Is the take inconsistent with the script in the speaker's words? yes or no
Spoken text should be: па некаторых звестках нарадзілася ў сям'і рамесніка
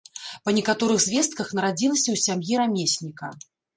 no